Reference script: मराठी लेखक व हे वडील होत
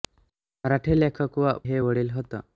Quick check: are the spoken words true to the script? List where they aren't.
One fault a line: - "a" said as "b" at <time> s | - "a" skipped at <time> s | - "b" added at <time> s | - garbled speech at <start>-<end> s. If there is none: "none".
none